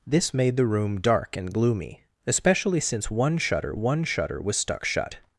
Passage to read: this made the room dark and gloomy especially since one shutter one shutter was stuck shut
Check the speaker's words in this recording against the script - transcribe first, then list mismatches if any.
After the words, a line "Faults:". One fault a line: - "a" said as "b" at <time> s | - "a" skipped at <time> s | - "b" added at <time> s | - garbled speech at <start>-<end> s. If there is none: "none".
this made the room dark and gloomy especially since one shutter one shutter was stuck shut
Faults:
none